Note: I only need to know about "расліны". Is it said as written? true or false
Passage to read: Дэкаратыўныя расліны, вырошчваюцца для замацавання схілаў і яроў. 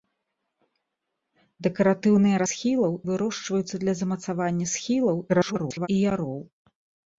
false